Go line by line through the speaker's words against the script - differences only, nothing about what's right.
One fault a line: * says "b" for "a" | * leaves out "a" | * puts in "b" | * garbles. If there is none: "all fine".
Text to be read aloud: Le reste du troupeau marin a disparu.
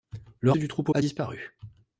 * leaves out "reste"
* leaves out "marin"